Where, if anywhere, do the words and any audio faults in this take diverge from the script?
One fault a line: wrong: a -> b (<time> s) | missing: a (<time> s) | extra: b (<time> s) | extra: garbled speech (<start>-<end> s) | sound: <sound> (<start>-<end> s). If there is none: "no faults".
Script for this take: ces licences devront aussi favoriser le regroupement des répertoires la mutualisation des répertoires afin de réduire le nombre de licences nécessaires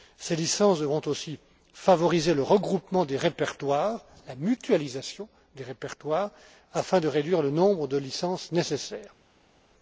no faults